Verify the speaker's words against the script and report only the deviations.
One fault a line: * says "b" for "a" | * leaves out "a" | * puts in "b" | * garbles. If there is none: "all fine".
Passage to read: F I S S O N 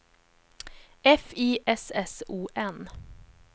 all fine